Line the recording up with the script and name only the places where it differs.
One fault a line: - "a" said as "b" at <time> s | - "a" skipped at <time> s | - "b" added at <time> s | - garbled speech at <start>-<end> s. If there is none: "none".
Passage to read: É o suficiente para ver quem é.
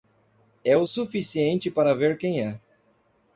none